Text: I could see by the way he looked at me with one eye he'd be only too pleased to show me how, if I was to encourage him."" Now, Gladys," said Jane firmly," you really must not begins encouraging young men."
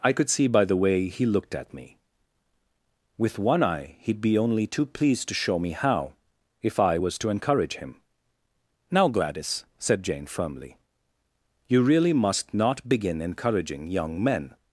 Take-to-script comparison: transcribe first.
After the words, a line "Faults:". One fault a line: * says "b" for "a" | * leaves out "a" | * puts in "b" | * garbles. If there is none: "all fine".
I could see by the way he looked at me with one eye he'd be only too pleased to show me how, if I was to encourage him."" Now, Gladys," said Jane firmly," you really must not begin encouraging young men."
Faults:
* says "begin" for "begins"